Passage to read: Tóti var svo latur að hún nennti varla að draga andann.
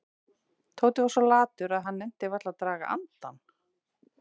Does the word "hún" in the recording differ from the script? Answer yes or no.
yes